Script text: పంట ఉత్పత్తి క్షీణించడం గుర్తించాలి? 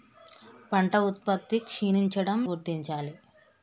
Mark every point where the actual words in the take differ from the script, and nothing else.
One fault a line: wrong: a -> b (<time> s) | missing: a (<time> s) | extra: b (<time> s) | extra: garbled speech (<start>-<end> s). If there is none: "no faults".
no faults